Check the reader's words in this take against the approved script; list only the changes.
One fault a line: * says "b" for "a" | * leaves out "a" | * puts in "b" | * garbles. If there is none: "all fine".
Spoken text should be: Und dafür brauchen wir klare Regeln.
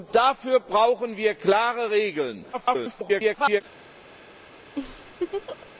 * garbles